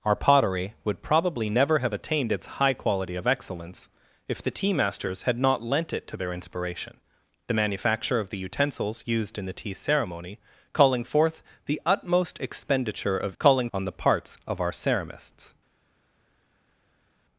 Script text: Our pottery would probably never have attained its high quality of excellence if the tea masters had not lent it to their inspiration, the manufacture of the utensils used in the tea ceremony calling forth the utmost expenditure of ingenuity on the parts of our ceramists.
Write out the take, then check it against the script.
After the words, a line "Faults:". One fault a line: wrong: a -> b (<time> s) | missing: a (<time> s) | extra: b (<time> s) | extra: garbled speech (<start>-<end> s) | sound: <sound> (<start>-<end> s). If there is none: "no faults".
Our pottery would probably never have attained its high quality of excellence if the tea masters had not lent it to their inspiration, the manufacture of the utensils used in the tea ceremony calling forth the utmost expenditure of calling on the parts of our ceramists.
Faults:
wrong: ingenuity -> calling (13.4 s)